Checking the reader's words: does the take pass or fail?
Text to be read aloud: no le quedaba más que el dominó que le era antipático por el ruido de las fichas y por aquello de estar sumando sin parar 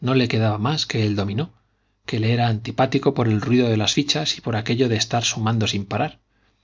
pass